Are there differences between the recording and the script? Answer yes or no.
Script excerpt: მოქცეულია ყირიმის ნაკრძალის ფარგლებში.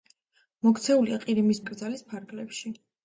no